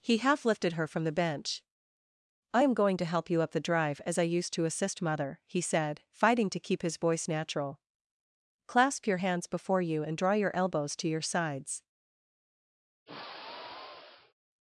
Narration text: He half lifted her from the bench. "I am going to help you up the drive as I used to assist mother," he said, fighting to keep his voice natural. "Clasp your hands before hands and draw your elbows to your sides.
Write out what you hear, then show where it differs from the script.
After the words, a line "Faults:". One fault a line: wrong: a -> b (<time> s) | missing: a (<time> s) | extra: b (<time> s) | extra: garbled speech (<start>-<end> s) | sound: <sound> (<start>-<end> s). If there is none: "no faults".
He half lifted her from the bench. "I am going to help you up the drive as I used to assist mother," he said, fighting to keep his voice natural. "Clasp your hands before you and draw your elbows to your sides.
Faults:
wrong: hands -> you (9.8 s)
sound: sigh (13.1-14.3 s)